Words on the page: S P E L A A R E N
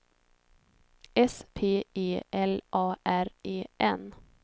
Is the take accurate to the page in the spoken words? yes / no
no